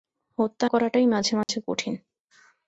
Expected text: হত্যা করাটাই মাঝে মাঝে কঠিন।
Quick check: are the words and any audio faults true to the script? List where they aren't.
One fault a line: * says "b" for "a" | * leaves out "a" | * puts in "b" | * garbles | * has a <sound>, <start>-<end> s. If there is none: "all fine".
* has a dropout, 1.4-1.5 s